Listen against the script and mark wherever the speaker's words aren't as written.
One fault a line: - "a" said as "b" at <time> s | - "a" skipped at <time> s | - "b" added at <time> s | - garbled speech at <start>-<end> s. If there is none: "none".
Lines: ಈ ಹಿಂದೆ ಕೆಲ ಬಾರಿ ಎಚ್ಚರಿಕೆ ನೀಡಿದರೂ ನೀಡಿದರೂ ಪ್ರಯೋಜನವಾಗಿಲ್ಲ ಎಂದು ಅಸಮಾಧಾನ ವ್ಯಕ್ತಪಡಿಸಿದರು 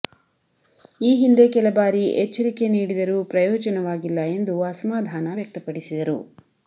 - "ನೀಡಿದರೂ" skipped at 3.2 s